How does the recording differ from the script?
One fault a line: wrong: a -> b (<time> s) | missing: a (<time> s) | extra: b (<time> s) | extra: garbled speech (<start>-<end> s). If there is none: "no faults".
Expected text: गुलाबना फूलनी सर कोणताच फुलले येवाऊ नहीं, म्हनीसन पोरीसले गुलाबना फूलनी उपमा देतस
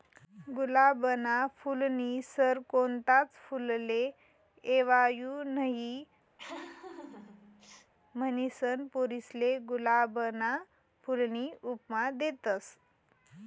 no faults